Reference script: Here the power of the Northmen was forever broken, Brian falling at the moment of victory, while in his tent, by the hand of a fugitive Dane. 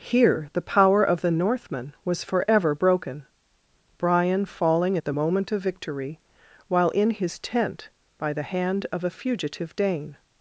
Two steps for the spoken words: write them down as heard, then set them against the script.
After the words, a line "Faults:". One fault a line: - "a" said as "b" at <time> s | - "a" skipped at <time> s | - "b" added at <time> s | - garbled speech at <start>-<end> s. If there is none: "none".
Here the power of the Northmen was forever broken, Brian falling at the moment of victory, while in his tent, by the hand of a fugitive Dane.
Faults:
none